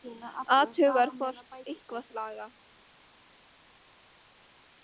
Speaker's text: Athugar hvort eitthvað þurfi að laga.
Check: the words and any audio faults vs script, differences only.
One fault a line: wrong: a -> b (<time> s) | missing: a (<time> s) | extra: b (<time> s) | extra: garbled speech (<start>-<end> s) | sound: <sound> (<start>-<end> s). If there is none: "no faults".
missing: þurfi (2.1 s)